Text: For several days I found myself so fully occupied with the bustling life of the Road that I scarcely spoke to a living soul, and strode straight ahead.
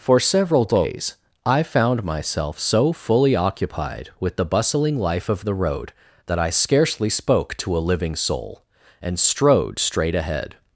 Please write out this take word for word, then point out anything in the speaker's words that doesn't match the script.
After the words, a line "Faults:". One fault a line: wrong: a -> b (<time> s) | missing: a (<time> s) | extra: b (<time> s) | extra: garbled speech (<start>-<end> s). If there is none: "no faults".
For several days I found myself so fully occupied with the bustling life of the Road that I scarcely spoke to a living soul, and strode straight ahead.
Faults:
no faults